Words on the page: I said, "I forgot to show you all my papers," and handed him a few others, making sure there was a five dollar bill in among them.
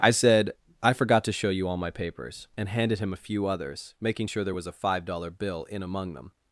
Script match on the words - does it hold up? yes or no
yes